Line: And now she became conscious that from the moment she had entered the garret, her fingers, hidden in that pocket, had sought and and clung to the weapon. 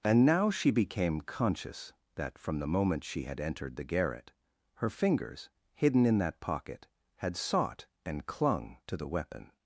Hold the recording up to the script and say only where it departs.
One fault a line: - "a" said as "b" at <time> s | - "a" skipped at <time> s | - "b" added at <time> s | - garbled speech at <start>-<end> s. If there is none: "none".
- "and" skipped at 8.2 s